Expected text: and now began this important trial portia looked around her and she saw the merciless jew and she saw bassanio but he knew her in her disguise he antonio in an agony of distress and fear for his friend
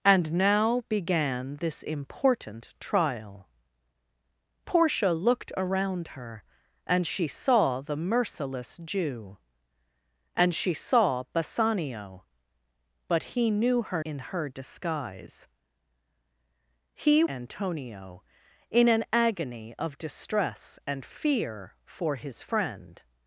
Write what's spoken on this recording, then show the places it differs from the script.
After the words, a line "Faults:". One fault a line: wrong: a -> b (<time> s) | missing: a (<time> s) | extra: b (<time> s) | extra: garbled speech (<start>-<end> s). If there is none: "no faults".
and now began this important trial portia looked around her and she saw the merciless jew and she saw bassanio but he knew her in her disguise he antonio in an agony of distress and fear for his friend
Faults:
no faults